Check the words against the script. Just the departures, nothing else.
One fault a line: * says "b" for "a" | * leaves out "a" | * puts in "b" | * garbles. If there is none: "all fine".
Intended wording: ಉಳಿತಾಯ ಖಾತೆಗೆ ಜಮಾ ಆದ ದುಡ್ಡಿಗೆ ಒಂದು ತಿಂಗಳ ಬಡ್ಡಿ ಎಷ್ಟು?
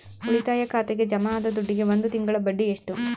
all fine